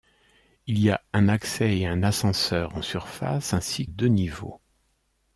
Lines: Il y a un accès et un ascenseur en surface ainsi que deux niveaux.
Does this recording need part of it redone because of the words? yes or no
yes